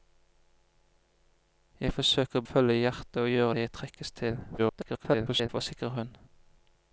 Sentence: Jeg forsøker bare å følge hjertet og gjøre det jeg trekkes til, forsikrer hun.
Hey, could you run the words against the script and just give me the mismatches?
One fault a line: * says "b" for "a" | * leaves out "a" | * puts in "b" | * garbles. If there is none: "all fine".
* leaves out "bare"
* garbles